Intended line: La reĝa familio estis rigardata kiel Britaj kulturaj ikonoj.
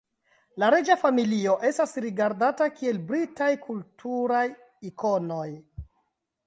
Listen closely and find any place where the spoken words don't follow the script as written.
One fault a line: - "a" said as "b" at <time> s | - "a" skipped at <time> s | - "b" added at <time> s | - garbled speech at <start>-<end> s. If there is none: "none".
- "estis" said as "estas" at 1.7 s